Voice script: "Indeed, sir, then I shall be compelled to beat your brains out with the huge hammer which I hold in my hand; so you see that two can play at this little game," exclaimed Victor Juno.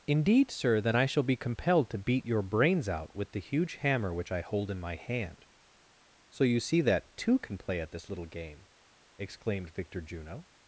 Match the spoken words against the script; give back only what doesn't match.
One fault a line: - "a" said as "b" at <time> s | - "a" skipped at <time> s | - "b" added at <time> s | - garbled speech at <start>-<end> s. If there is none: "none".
none